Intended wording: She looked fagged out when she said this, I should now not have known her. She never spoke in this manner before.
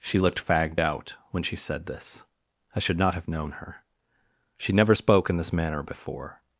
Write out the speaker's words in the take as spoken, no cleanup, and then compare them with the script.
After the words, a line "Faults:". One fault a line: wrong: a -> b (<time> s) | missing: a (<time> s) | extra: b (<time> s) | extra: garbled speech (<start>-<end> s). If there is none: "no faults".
She looked fagged out when she said this, I should not have known her. She never spoke in this manner before.
Faults:
missing: now (3.0 s)